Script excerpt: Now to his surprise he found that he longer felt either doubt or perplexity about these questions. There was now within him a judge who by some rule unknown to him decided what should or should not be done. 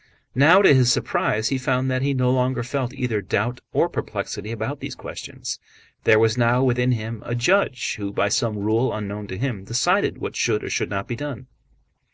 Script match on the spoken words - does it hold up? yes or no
no